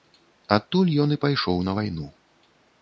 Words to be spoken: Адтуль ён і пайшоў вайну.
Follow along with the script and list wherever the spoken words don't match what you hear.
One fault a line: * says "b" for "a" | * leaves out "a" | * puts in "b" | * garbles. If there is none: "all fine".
* puts in "на"